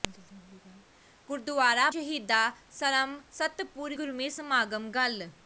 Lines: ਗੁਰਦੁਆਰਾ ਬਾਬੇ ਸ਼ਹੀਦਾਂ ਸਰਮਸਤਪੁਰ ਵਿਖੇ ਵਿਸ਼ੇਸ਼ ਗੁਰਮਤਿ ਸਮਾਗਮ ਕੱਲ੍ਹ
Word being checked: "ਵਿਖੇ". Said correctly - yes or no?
no